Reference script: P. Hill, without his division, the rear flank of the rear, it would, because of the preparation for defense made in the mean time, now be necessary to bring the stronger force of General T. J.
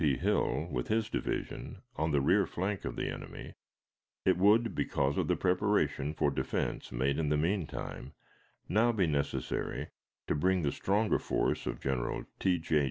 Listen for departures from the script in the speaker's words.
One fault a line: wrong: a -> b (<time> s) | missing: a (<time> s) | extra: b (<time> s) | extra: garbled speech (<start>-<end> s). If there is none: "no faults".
wrong: without -> with (0.7 s)
extra: on (1.9 s)
wrong: rear -> enemy (3.1 s)